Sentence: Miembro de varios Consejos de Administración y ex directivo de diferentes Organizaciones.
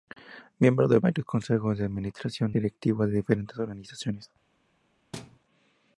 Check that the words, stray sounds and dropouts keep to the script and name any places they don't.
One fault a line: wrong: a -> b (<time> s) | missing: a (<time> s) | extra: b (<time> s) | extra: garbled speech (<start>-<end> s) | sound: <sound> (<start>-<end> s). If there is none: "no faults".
missing: y ex (2.5 s)
sound: thud (5.1-5.4 s)